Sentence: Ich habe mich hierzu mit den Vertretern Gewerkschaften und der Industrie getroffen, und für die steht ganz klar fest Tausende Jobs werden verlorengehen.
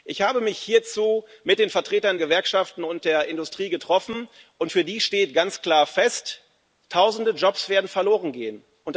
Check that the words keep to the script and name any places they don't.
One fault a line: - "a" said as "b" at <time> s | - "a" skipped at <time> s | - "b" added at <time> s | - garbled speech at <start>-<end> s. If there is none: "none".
none